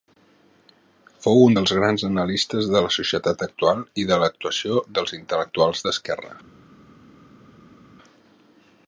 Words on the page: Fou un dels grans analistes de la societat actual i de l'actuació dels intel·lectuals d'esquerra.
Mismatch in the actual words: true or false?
false